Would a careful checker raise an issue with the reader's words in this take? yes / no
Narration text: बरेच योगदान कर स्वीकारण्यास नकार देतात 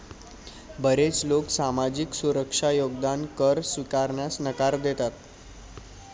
yes